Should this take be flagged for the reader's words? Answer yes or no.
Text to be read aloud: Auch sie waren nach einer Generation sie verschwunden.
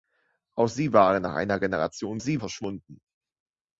no